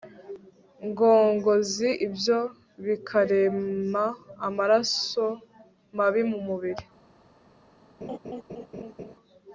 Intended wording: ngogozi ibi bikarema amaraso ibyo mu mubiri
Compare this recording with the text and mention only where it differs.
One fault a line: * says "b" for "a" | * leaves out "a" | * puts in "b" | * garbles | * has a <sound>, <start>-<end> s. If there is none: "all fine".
* says "ibyo" for "ibi"
* says "mabi" for "ibyo"
* has a laugh, 8.0-9.2 s